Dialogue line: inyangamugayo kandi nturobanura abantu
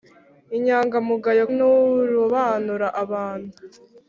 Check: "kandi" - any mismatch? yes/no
yes